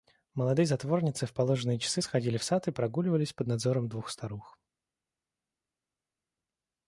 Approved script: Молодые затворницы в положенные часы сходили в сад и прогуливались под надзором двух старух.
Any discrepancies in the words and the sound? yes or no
no